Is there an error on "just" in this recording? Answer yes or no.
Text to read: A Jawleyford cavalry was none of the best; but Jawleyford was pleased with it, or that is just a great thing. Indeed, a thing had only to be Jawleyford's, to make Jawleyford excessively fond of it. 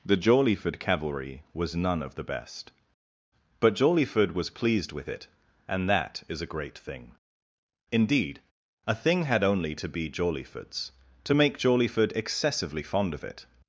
yes